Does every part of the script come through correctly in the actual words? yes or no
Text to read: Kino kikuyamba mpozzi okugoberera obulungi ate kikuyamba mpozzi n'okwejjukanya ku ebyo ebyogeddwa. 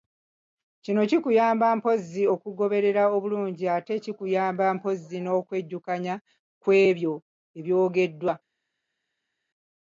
yes